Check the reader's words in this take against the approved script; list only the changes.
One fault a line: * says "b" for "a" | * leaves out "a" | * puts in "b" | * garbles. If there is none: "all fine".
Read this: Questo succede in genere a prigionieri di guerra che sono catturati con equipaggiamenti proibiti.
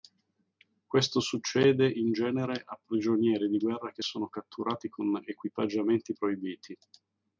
all fine